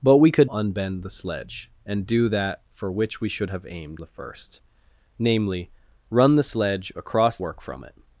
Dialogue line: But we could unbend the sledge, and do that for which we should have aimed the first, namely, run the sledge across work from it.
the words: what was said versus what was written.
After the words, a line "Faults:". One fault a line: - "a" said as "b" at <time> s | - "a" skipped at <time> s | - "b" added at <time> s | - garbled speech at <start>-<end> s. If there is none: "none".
But we could unbend the sledge, and do that for which we should have aimed the first, namely, run the sledge across work from it.
Faults:
none